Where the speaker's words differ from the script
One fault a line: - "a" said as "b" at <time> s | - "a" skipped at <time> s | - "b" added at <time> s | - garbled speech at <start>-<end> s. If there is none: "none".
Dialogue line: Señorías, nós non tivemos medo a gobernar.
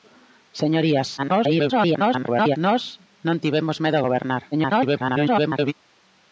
- garbled speech at 1.2-2.6 s
- garbled speech at 4.5-5.7 s